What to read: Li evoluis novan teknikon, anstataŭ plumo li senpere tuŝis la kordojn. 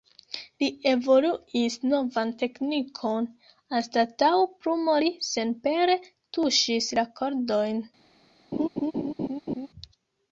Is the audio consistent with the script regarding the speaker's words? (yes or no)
yes